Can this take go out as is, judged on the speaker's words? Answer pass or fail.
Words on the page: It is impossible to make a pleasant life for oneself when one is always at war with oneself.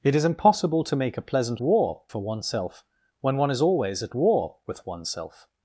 fail